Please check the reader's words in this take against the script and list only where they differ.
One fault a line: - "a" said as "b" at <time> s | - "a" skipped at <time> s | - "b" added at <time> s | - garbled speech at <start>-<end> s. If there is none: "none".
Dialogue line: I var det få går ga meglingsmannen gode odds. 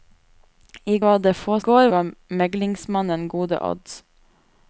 none